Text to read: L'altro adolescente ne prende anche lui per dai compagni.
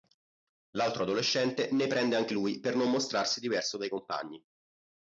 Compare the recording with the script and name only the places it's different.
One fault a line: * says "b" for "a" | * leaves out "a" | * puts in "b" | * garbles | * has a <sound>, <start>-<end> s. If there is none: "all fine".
* puts in "non mostrarsi diverso"